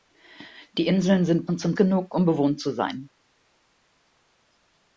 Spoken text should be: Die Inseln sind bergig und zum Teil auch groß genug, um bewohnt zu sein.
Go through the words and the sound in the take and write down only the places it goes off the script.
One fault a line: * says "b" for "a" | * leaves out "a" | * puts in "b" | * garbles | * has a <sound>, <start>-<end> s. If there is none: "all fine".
* leaves out "bergig"
* leaves out "Teil auch groß"